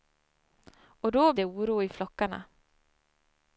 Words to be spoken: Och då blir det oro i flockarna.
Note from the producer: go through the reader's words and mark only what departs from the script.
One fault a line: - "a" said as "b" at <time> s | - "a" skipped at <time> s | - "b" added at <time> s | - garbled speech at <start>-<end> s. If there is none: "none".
- "blir" skipped at 1.3 s